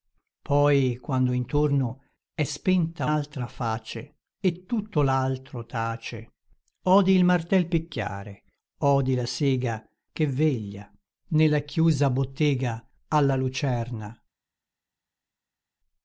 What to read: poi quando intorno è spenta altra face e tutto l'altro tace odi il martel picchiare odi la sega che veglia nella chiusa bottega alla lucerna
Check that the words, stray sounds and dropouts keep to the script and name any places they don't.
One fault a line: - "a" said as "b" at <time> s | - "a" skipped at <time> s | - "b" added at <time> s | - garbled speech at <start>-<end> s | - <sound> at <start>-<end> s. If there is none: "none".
none